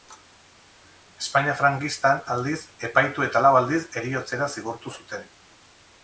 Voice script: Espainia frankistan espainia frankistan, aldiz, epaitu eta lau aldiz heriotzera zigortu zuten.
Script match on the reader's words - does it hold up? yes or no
no